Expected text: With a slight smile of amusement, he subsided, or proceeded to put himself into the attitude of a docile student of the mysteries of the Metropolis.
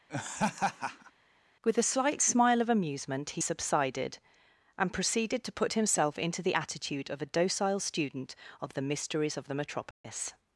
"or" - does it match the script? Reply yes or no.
no